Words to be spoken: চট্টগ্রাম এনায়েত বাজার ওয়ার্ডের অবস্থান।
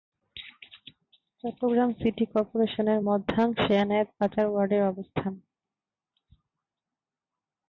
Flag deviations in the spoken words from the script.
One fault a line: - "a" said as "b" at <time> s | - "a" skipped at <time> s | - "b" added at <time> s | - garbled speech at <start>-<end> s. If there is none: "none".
- "সিটি কর্পোরেশনের মধ্যাংশে" added at 2.0 s